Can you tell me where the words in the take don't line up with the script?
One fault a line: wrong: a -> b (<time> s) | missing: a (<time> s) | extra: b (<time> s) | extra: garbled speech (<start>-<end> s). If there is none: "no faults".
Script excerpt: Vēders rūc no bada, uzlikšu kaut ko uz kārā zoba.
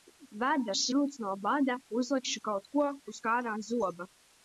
no faults